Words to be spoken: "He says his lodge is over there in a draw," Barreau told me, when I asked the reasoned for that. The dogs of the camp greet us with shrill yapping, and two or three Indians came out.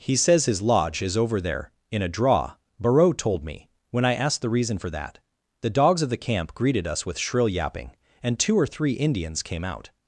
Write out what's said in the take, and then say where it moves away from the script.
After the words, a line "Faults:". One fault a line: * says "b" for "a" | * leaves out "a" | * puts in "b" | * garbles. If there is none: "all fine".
"He says his lodge is over there in a draw," Barreau told me, when I asked the reason for that. The dogs of the camp greeted us with shrill yapping, and two or three Indians came out.
Faults:
* says "reason" for "reasoned"
* says "greeted" for "greet"